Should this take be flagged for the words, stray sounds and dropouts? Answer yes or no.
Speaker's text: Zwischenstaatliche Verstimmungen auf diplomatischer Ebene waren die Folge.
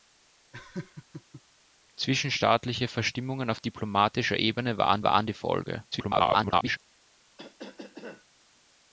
yes